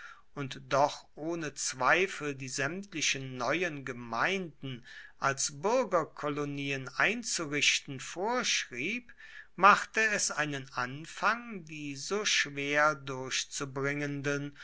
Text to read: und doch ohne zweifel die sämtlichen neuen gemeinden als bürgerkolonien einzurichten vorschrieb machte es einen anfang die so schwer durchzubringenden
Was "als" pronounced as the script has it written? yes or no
yes